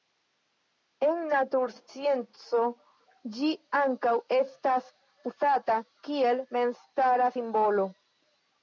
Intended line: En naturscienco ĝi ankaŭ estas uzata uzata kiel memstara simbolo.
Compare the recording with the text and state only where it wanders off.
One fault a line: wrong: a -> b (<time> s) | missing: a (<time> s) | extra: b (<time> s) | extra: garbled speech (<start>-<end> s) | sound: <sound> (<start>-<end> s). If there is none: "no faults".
missing: uzata (5.8 s)